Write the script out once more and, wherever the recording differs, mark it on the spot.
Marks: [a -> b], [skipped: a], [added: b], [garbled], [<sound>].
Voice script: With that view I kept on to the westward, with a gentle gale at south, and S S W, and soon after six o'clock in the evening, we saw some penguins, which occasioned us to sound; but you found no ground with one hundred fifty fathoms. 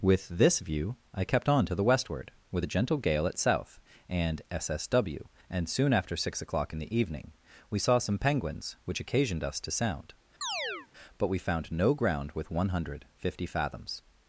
With [that -> this] view I kept on to the westward, with a gentle gale at south, and S S W, and soon after six o'clock in the evening, we saw some penguins, which occasioned us to sound; [chirp] but [you -> we] found no ground with one hundred fifty fathoms.